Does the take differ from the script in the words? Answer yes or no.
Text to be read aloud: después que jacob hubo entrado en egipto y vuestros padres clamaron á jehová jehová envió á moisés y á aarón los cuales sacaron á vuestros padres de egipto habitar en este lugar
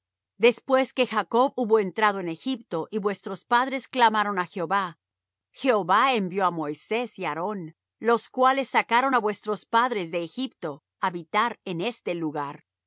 no